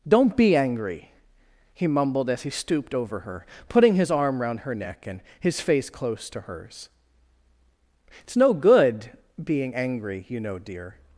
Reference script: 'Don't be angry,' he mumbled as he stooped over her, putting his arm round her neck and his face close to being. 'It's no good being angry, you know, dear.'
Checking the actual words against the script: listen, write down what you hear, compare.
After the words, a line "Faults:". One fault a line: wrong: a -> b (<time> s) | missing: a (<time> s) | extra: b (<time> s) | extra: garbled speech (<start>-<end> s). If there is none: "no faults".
'Don't be angry,' he mumbled as he stooped over her, putting his arm round her neck and his face close to hers. 'It's no good being angry, you know, dear.'
Faults:
wrong: being -> hers (6.4 s)